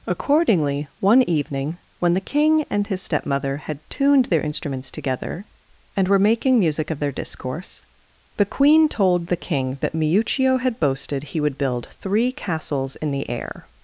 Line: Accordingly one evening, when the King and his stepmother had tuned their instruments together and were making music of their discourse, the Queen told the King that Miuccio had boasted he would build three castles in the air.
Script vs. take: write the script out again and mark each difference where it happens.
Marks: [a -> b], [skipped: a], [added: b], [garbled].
Accordingly one evening, when the King and his stepmother had tuned their instruments together and were making music of their discourse, the Queen told the King that Miuccio had boasted he would build three castles in the air.